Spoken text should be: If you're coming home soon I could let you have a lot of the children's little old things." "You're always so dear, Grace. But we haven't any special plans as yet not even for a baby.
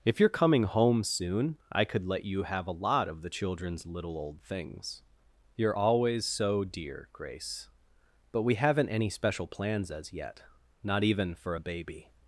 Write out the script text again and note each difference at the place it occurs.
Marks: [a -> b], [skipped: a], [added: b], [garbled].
If you're coming home soon I could let you have a lot of the children's little old things." "You're always so dear, Grace. But we haven't any special plans as yet not even for a baby.